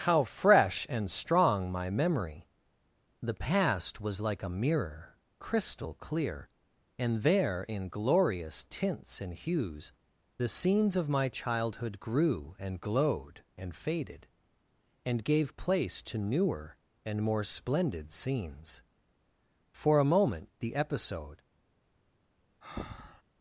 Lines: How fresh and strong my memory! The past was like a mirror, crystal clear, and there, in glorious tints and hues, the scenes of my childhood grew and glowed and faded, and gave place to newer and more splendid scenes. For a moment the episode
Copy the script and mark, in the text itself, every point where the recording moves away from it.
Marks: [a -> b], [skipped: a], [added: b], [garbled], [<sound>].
How fresh and strong my memory! The past was like a mirror, crystal clear, and there, in glorious tints and hues, the scenes of my childhood grew and glowed and faded, and gave place to newer and more splendid scenes. For a moment the episode [breath]